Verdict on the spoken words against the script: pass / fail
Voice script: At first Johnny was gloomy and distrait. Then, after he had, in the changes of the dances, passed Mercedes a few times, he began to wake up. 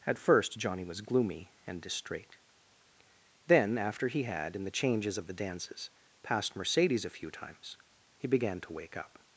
pass